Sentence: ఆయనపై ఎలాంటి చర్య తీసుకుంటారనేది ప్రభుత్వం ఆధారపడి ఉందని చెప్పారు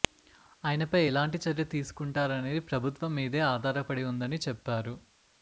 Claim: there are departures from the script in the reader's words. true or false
true